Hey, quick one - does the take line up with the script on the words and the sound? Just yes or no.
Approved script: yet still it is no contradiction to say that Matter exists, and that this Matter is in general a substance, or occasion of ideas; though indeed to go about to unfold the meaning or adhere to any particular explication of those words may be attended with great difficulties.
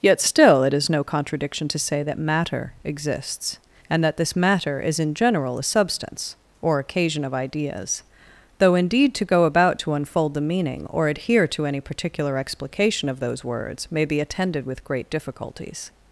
yes